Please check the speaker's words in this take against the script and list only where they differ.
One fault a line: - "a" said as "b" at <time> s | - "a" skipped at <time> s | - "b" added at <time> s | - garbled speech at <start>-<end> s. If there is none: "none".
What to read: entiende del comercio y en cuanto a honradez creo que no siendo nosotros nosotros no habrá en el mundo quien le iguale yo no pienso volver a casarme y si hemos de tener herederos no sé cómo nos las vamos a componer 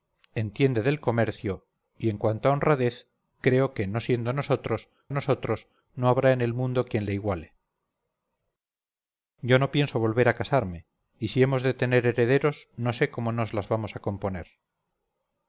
none